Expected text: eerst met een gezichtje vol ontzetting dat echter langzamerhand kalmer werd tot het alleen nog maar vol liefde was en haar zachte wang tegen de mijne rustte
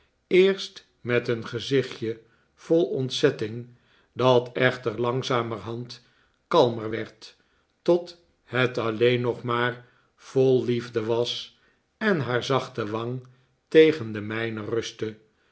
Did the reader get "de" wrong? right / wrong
right